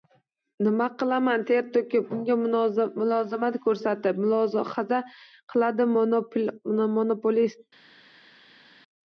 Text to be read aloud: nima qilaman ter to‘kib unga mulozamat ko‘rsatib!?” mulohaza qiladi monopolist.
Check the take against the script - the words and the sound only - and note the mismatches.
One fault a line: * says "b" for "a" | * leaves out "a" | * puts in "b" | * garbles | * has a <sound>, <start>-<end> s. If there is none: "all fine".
all fine